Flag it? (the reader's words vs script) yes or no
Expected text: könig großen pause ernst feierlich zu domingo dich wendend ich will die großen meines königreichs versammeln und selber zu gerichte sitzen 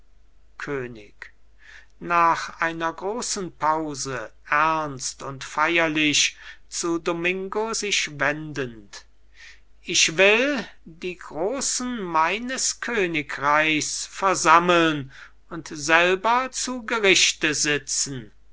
yes